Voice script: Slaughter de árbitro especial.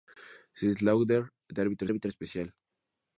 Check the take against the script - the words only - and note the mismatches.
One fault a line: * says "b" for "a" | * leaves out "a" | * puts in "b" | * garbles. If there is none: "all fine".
* puts in "árbitro"